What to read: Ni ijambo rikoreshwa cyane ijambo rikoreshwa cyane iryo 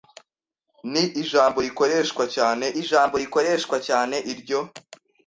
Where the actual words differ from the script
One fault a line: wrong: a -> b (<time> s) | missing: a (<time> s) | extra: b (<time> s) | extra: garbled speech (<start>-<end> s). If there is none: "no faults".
no faults